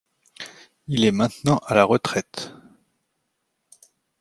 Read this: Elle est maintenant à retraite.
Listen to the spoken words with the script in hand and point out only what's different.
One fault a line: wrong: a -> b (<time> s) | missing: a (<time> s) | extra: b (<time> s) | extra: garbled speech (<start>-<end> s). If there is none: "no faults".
wrong: Elle -> Il (0.9 s)
extra: la (1.7 s)